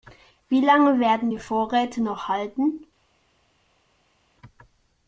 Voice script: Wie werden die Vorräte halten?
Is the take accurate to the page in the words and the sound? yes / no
no